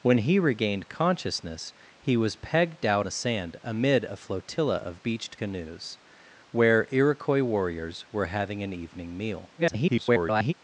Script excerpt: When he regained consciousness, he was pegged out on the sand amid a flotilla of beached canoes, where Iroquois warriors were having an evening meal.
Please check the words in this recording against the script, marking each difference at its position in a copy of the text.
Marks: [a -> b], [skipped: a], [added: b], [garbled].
When he regained consciousness, he was pegged out [skipped: on] the sand amid a flotilla of beached canoes, where Iroquois warriors were having an evening meal. [garbled]